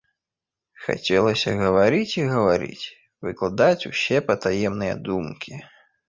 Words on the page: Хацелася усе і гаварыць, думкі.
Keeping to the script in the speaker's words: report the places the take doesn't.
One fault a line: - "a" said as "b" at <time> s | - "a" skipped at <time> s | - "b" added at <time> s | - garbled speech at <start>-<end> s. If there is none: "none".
- "усе" said as "гаварыць" at 1.6 s
- "выкладаць усе патаемныя" added at 3.3 s